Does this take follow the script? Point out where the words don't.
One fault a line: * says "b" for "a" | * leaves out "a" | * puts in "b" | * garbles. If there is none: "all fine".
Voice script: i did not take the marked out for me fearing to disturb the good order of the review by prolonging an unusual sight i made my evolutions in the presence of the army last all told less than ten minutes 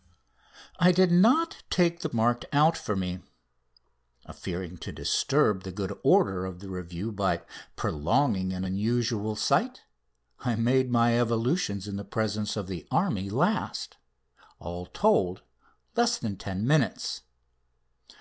all fine